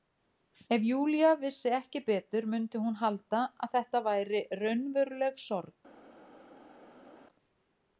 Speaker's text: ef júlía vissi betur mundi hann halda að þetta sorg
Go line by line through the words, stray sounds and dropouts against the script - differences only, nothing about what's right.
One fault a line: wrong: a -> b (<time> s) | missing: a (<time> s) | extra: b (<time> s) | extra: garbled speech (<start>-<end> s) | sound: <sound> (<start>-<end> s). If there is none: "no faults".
extra: ekki (1.8 s)
wrong: hann -> hún (2.9 s)
extra: væri raunveruleg (4.1 s)